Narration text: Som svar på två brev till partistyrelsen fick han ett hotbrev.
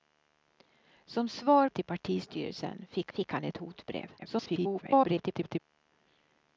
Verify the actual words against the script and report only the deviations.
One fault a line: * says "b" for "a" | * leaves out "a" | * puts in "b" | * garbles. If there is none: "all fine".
* leaves out "på två brev"
* puts in "fick"
* garbles